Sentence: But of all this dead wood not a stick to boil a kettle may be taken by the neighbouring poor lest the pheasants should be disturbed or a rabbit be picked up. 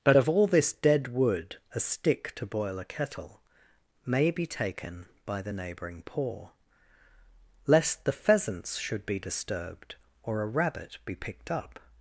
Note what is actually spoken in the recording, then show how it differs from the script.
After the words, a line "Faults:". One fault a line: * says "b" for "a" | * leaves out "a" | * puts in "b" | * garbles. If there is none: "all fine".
But of all this dead wood a stick to boil a kettle may be taken by the neighbouring poor lest the pheasants should be disturbed or a rabbit be picked up.
Faults:
* leaves out "not"